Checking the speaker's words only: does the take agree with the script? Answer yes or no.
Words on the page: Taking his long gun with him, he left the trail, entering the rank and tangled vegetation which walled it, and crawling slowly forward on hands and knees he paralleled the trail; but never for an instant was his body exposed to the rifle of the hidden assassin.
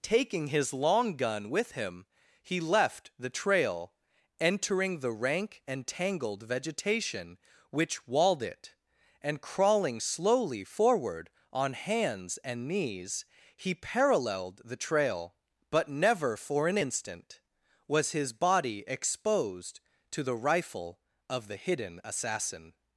yes